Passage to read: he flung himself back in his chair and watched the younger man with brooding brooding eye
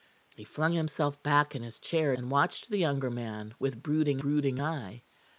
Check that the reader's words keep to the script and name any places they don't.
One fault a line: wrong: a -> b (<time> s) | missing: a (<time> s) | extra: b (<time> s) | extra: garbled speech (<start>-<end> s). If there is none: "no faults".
no faults